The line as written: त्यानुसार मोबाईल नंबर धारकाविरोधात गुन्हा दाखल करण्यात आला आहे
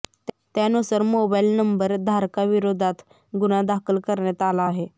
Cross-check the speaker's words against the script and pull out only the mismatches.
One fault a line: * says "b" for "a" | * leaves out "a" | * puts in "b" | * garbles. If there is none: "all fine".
all fine